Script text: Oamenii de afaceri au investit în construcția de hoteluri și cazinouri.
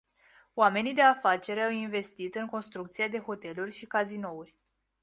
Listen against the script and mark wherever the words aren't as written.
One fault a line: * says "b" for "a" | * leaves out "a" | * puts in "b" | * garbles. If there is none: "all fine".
all fine